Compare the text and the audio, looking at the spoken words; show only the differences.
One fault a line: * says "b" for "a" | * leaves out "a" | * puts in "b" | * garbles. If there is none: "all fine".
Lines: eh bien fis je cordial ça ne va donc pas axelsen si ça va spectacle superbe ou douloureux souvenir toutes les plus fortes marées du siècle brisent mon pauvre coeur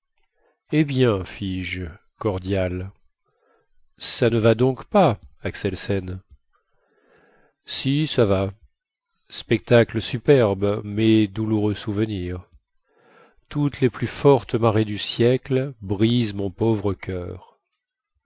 * says "mais" for "ou"